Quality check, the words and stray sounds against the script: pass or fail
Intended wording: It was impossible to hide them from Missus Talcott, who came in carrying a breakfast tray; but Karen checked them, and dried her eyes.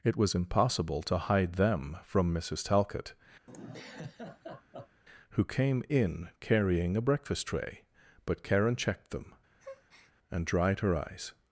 fail